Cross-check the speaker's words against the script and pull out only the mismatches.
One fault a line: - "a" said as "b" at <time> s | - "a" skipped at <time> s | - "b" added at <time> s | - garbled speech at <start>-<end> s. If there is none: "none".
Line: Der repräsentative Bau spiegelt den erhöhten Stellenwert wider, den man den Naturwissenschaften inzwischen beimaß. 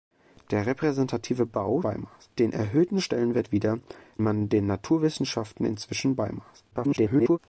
- "spiegelt" said as "beimaß" at 1.8 s
- "den" skipped at 3.8 s
- garbled speech at 6.7-7.4 s